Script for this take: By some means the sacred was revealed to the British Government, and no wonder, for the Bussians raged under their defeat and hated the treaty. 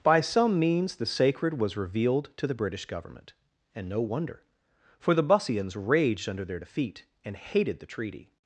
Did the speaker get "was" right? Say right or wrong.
right